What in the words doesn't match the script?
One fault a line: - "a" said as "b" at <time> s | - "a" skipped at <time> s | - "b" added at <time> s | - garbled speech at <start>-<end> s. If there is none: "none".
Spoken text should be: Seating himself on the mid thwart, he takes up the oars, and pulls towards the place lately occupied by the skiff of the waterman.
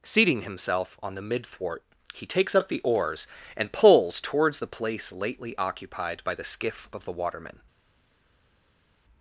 none